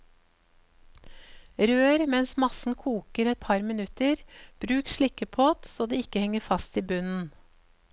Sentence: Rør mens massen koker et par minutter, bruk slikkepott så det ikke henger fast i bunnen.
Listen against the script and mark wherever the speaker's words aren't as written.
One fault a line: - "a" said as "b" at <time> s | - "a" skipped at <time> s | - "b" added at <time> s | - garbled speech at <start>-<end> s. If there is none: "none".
none